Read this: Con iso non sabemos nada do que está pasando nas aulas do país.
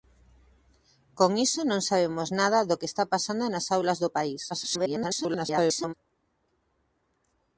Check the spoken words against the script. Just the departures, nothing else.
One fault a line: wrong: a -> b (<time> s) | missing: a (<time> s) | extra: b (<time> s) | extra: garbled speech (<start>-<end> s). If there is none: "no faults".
extra: garbled speech (4.5-5.9 s)